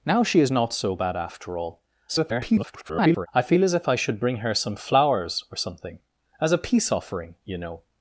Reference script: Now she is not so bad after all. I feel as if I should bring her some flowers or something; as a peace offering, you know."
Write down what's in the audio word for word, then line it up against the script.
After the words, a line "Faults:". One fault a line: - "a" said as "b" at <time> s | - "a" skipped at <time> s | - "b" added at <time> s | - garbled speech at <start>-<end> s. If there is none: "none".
Now she is not so bad after all. [garbled] I feel as if I should bring her some flowers or something; as a peace offering, you know."
Faults:
- garbled speech at 2.1-3.3 s